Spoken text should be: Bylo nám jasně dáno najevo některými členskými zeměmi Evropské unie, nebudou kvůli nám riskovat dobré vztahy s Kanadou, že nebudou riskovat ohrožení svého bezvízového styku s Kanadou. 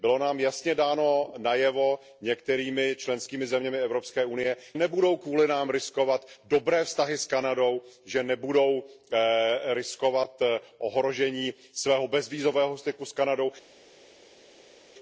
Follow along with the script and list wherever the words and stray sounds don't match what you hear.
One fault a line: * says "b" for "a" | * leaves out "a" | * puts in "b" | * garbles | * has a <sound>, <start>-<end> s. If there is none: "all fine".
all fine